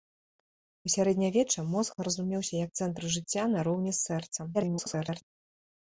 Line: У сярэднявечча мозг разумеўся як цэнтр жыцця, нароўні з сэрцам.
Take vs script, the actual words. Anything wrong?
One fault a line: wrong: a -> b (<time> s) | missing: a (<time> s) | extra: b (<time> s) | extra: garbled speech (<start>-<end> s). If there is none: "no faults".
extra: garbled speech (4.5-5.2 s)